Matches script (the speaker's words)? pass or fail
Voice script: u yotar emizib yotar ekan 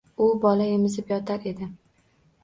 fail